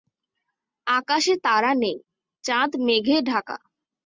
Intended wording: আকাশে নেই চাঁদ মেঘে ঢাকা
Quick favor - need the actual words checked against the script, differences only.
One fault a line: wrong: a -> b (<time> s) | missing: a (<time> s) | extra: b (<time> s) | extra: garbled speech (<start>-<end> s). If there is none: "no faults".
extra: তারা (1.4 s)